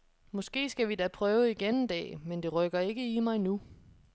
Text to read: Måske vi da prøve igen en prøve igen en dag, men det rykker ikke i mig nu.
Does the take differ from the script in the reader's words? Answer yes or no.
yes